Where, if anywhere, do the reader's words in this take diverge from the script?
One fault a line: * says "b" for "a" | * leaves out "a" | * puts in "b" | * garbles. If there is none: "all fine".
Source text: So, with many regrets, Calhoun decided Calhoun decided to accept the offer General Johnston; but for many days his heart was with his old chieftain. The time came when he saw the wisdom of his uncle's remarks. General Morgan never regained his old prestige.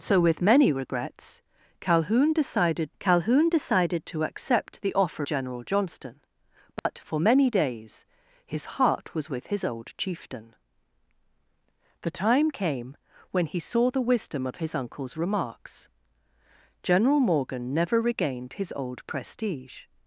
all fine